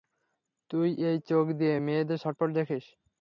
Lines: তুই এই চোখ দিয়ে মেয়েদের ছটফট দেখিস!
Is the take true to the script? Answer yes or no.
yes